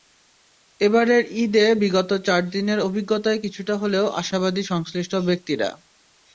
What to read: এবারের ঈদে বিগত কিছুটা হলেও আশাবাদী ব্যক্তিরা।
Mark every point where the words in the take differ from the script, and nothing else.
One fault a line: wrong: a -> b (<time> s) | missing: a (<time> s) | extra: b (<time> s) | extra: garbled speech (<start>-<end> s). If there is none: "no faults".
extra: চার দিনের অভিজ্ঞতায় (2.3 s)
extra: সংশ্লিষ্ট (4.7 s)